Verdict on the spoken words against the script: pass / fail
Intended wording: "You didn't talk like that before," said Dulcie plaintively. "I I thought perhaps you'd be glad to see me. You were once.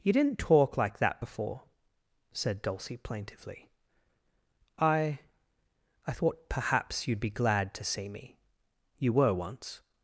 pass